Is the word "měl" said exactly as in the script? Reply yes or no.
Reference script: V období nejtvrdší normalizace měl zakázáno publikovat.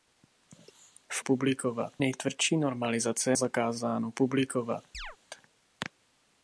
no